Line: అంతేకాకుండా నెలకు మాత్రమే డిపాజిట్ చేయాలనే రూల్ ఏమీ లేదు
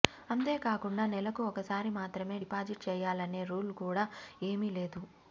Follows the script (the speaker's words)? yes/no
no